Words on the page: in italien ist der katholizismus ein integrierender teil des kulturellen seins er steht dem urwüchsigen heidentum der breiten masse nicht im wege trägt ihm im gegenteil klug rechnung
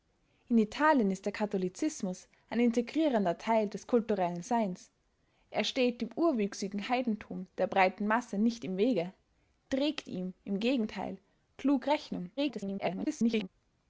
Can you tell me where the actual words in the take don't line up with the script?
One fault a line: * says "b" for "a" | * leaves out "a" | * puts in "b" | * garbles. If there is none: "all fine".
* garbles